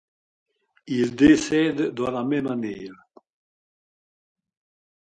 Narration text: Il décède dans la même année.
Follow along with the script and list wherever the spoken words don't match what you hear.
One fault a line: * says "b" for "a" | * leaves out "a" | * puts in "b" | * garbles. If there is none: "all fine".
all fine